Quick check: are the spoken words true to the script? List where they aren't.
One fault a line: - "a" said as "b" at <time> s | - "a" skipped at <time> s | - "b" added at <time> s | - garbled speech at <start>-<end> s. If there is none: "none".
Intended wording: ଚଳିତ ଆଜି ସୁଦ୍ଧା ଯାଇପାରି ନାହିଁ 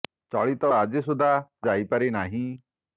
none